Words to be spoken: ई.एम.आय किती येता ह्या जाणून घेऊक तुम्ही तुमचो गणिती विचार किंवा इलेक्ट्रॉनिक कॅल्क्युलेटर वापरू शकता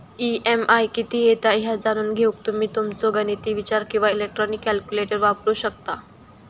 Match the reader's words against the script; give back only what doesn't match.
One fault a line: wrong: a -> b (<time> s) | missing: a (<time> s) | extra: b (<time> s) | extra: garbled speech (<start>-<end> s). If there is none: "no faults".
no faults